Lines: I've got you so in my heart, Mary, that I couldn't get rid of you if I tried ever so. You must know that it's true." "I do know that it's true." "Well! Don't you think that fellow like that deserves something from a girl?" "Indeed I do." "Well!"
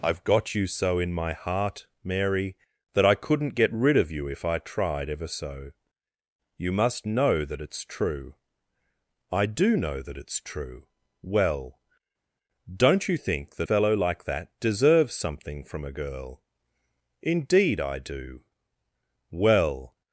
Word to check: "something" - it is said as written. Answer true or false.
true